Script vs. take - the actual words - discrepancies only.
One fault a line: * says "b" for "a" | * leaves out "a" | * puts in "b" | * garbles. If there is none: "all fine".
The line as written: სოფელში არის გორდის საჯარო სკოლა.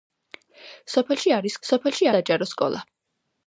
* says "სოფელში" for "გორდის"